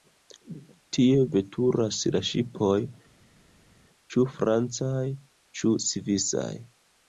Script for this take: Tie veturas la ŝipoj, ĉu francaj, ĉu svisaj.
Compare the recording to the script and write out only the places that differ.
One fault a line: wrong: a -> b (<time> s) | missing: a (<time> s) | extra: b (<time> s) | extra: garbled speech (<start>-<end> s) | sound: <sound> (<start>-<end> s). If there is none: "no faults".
no faults